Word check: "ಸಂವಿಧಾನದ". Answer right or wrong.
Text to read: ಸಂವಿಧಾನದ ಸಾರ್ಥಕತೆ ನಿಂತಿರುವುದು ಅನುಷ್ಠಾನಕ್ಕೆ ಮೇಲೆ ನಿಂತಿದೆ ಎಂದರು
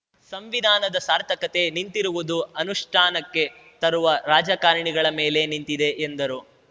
right